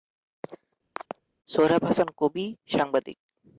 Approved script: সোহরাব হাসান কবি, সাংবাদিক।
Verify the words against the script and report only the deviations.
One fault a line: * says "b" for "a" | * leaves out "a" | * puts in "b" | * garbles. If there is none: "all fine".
all fine